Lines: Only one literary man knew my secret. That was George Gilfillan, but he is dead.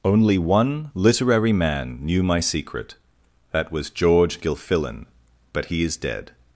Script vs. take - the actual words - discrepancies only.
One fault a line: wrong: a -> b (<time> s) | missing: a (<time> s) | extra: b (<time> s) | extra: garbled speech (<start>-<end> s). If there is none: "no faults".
no faults